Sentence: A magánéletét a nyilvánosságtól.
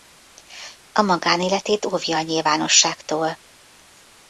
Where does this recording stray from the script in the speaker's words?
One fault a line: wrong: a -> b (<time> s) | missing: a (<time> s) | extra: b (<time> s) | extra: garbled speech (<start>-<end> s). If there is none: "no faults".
extra: óvja (1.8 s)